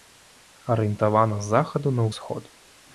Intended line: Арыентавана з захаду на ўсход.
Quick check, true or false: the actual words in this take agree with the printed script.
true